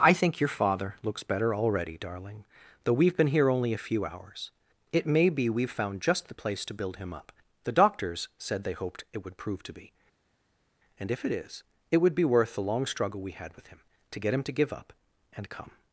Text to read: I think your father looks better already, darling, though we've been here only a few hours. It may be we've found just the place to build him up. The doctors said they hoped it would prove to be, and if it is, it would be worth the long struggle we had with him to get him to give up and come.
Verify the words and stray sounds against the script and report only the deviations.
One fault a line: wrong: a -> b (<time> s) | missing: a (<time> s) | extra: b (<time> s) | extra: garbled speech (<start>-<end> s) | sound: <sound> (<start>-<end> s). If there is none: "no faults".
no faults